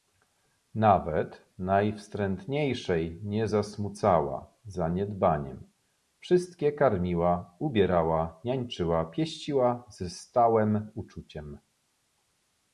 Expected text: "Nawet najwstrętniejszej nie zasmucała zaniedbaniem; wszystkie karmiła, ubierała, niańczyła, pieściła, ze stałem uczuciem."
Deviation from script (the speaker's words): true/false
false